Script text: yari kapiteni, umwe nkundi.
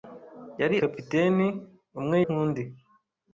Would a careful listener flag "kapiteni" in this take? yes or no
no